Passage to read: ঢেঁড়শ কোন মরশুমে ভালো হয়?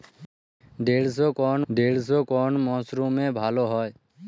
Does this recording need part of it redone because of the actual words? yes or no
yes